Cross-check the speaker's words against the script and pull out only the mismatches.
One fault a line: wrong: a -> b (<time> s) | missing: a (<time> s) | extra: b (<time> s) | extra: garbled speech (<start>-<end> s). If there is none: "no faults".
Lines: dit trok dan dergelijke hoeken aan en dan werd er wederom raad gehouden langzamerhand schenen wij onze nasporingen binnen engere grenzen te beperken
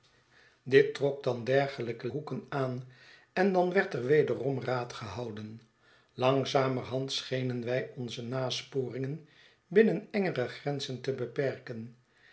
no faults